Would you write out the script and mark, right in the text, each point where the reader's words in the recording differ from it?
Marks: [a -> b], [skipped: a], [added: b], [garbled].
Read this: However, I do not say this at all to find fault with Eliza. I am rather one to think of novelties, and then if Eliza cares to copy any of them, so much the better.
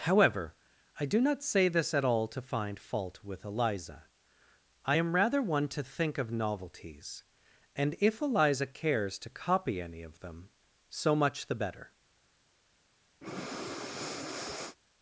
However, I do not say this at all to find fault with Eliza. I am rather one to think of novelties, and [skipped: then] if Eliza cares to copy any of them, so much the better.